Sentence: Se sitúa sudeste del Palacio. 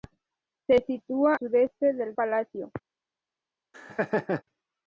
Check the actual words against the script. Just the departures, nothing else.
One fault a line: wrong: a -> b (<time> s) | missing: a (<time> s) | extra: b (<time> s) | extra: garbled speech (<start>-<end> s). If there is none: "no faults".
no faults